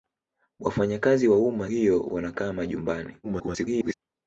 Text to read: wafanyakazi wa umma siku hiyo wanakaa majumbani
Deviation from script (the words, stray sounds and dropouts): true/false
true